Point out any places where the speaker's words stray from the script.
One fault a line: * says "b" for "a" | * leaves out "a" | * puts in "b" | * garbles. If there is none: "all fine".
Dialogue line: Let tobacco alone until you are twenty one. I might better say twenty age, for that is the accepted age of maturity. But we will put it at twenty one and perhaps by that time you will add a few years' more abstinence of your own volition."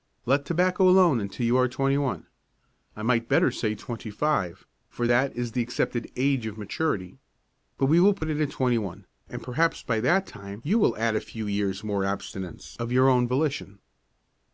* says "five" for "age"